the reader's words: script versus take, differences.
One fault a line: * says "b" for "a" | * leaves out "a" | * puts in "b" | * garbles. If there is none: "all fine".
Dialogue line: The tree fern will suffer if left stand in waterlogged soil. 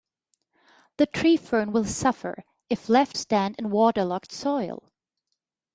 all fine